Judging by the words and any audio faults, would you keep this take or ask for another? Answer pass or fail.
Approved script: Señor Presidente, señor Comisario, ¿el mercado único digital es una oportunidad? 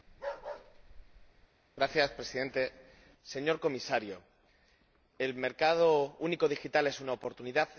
fail